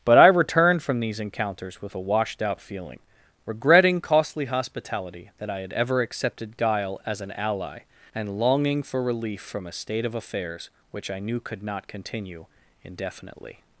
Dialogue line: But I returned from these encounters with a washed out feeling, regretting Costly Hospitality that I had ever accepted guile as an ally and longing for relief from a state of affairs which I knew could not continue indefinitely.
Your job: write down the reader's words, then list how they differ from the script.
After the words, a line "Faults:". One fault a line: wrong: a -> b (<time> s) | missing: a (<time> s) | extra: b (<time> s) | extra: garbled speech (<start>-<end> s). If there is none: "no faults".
But I returned from these encounters with a washed out feeling, regretting Costly Hospitality that I had ever accepted guile as an ally and longing for relief from a state of affairs which I knew could not continue indefinitely.
Faults:
no faults